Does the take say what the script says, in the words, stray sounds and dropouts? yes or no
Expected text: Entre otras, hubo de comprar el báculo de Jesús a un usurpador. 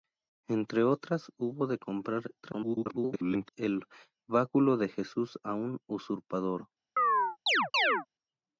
no